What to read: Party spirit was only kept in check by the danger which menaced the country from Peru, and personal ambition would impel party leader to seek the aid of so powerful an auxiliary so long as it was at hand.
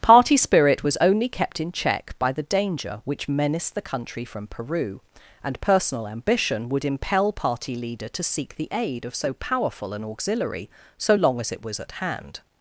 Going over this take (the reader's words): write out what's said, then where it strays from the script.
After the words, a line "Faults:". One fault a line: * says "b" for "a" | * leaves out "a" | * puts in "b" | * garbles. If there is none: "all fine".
Party spirit was only kept in check by the danger which menaced the country from Peru, and personal ambition would impel party leader to seek the aid of so powerful an auxiliary so long as it was at hand.
Faults:
all fine